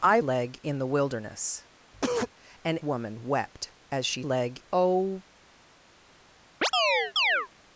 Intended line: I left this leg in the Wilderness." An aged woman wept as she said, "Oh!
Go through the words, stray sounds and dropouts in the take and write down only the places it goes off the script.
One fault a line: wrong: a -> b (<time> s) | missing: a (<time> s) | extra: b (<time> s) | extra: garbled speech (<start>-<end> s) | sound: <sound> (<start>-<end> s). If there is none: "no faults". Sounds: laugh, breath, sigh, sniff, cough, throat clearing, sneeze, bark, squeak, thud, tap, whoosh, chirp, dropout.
missing: left this (0.2 s)
sound: cough (1.9-2.3 s)
missing: aged (2.8 s)
wrong: said -> leg (4.2 s)
sound: chirp (6.6-7.5 s)